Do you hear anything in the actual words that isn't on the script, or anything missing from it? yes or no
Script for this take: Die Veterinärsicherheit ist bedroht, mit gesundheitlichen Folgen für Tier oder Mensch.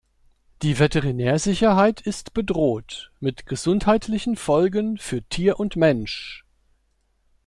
yes